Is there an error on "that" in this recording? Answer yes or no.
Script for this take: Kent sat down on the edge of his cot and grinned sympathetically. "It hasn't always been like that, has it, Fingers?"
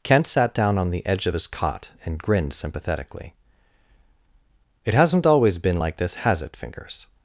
yes